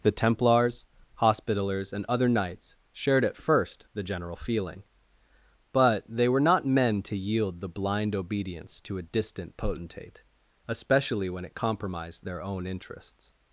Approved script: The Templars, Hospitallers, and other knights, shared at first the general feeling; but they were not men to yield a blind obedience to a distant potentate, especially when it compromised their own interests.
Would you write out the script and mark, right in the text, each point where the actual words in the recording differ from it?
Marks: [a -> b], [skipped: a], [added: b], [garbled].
The Templars, Hospitallers, and other knights, shared at first the general feeling; but they were not men to yield [a -> the] blind obedience to a distant potentate, especially when it compromised their own interests.